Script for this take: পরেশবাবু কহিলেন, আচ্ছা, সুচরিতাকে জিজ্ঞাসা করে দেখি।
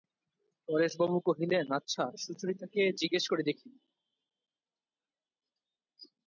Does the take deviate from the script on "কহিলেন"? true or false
false